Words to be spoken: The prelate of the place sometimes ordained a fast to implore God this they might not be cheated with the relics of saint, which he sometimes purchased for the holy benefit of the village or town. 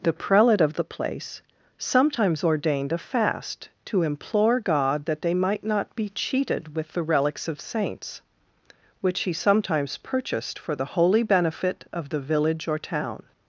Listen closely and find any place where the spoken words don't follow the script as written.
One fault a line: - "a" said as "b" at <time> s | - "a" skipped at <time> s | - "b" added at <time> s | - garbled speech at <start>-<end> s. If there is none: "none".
- "this" said as "that" at 5.0 s
- "saint" said as "saints" at 7.6 s